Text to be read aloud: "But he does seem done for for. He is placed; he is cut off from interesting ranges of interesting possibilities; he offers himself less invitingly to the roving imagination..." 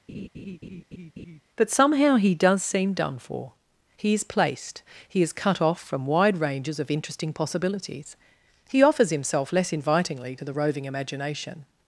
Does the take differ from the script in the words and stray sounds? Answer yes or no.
yes